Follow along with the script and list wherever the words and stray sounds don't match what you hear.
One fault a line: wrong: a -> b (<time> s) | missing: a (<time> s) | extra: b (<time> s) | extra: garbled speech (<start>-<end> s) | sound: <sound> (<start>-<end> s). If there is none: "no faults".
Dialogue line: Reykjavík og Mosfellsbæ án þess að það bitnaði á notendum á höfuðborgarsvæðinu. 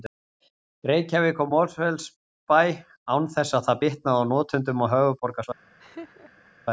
sound: laugh (5.8-6.5 s)